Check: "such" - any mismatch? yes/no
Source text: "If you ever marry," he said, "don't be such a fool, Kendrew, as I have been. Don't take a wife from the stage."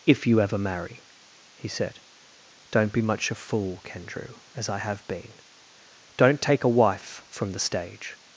yes